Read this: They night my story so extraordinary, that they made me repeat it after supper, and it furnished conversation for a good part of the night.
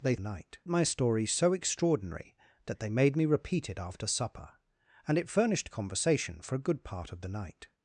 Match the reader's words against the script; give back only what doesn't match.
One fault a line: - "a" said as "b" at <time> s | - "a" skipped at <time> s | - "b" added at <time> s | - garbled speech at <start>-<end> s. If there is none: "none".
none